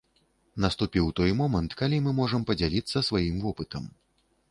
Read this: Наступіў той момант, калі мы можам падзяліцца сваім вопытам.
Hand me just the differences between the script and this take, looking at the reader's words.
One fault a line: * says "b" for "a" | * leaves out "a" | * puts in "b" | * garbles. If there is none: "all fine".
all fine